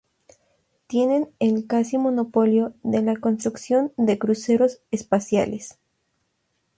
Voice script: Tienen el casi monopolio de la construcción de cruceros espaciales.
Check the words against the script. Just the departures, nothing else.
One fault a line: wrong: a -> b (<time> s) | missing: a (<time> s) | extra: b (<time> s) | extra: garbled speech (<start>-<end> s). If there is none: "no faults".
no faults